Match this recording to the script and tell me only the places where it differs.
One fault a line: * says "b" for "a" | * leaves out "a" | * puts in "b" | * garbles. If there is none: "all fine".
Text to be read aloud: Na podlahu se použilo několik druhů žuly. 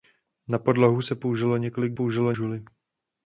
* says "použilo" for "druhů"